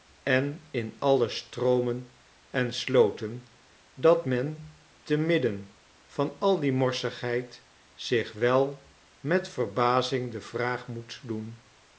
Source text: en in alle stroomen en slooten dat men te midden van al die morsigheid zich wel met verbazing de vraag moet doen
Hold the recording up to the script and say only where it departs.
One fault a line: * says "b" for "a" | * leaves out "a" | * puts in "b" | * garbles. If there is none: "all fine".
all fine